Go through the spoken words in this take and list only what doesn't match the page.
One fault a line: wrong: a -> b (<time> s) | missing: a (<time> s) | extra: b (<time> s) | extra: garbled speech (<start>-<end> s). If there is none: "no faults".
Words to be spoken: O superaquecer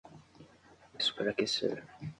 no faults